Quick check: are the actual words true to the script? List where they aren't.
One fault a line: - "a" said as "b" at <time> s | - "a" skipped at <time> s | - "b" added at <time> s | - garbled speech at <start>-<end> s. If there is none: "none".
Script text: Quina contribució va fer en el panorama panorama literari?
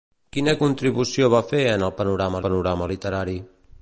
none